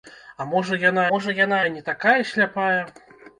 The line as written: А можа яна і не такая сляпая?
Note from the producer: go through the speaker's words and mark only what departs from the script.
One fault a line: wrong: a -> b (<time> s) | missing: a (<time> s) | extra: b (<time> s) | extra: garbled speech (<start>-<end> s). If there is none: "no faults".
extra: можа яна (1.1 s)